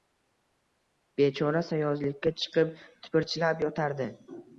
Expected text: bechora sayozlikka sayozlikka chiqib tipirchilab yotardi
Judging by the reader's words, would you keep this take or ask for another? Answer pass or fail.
fail